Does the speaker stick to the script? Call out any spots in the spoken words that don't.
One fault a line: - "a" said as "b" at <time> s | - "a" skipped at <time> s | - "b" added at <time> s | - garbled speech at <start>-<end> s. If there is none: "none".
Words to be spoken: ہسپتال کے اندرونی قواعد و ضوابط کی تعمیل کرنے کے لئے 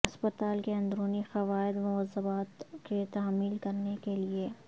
none